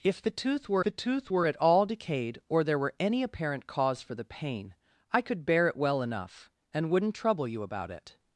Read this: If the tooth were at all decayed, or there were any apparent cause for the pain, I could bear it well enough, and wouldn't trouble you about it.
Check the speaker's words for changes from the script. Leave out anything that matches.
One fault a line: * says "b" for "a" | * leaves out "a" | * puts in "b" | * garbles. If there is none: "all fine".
* puts in "the tooth were"